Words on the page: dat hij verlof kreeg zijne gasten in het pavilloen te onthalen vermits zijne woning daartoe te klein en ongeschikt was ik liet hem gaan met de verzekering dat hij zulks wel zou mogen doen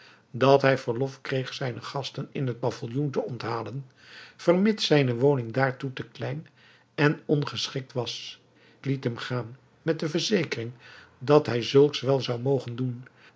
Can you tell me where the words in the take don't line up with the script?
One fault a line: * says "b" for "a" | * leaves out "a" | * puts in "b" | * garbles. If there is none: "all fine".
* leaves out "ik"